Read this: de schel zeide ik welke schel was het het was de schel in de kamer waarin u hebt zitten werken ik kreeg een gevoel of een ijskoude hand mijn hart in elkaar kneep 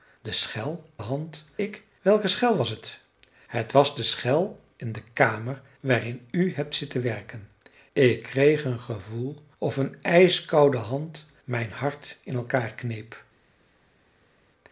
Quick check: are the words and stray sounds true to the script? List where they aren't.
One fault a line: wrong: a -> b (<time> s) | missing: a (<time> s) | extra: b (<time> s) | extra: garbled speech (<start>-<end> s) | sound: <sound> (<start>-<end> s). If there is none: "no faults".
wrong: zeide -> hand (1.0 s)